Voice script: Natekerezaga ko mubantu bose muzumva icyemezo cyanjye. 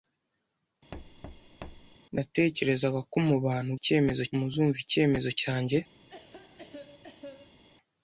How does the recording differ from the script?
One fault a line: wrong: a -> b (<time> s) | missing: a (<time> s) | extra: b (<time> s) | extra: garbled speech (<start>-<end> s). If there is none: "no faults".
wrong: bose -> icyemezo (3.8 s)